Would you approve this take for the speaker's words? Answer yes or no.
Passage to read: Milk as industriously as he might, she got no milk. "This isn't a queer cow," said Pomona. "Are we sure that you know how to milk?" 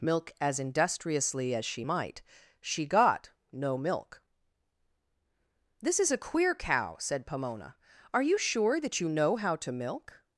no